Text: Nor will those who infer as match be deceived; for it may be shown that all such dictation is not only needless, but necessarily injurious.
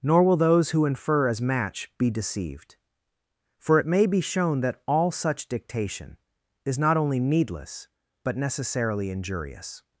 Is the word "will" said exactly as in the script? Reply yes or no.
yes